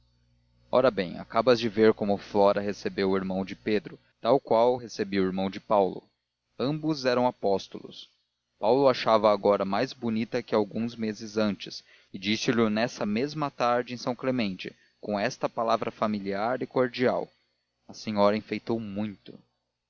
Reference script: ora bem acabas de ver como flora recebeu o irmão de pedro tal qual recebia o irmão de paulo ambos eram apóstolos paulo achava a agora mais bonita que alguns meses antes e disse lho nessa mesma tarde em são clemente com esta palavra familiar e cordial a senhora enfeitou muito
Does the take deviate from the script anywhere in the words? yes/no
no